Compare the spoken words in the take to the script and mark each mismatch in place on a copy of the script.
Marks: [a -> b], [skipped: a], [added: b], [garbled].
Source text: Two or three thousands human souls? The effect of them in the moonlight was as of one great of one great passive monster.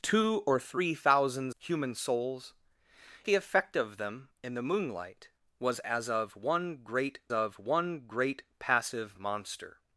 Two or three thousands human souls? The effect of them in the moonlight was as of one great of one great passive monster.